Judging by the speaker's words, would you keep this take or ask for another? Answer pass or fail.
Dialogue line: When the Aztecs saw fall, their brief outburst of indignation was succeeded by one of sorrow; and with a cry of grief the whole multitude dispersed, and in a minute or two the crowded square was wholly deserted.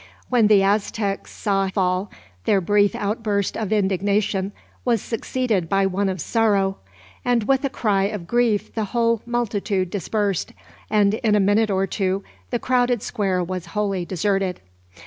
pass